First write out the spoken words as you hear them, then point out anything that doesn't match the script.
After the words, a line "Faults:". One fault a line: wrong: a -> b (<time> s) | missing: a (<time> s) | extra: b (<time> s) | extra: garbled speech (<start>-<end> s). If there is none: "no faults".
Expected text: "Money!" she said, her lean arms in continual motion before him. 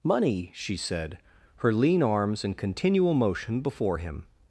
"Money!" she said, her lean arms in continual motion before him.
Faults:
no faults